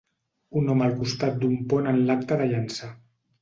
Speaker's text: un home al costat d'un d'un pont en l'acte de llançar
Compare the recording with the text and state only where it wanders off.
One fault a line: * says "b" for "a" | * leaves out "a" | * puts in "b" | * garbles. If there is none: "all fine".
* leaves out "d'un"